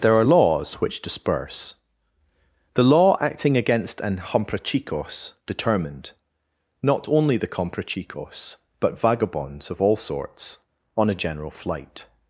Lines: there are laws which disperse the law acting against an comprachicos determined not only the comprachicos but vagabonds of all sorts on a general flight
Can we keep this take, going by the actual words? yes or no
yes